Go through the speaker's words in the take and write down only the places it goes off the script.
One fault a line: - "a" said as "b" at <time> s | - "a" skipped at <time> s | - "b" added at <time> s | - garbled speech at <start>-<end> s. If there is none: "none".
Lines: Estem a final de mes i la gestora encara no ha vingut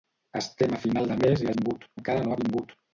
- "gestora" said as "vingut" at 1.6 s